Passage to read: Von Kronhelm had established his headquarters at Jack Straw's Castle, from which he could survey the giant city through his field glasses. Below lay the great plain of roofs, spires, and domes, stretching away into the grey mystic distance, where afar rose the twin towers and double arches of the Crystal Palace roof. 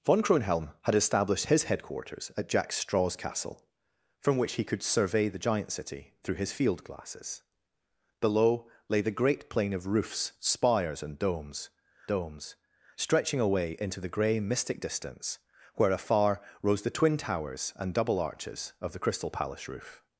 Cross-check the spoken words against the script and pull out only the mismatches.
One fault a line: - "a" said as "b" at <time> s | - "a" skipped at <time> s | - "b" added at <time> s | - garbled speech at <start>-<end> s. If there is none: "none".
- "domes" added at 12.1 s